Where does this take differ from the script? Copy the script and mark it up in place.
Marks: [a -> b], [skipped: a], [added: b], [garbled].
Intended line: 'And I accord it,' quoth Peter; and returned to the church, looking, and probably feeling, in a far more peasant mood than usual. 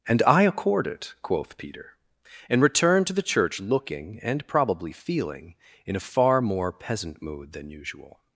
'And I accord it,' quoth Peter; and returned to the church, looking, and probably feeling, in a far more peasant mood than usual.